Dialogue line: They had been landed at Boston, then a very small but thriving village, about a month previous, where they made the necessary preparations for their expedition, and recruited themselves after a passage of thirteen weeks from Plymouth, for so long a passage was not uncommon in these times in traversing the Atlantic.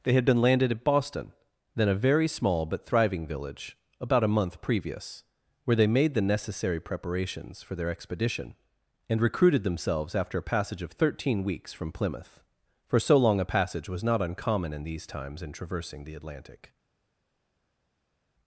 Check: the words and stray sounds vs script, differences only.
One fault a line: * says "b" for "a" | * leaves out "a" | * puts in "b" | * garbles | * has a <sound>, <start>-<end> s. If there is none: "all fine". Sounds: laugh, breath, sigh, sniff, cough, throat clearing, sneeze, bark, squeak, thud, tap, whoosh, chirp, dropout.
all fine